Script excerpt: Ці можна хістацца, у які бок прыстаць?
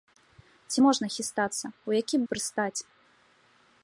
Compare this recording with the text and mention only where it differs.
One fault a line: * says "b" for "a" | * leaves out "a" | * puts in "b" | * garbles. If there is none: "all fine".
* leaves out "бок"